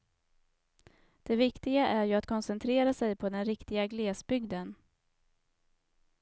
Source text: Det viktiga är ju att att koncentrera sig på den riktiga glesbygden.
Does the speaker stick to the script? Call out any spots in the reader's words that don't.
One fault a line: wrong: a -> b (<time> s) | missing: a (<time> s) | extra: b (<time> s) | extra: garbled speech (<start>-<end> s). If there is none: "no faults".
missing: att (2.3 s)